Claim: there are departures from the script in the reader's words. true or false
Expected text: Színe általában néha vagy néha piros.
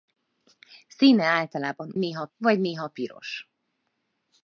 false